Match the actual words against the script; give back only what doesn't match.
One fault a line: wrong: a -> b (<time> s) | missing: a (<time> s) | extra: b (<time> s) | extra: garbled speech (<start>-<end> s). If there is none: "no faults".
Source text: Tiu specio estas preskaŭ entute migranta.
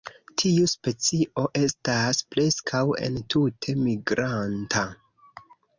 no faults